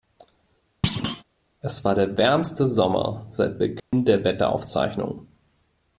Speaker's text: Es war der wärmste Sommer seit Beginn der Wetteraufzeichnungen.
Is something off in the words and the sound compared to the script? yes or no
yes